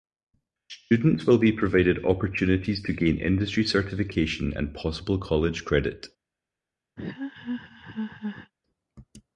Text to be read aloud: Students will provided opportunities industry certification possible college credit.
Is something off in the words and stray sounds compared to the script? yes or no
yes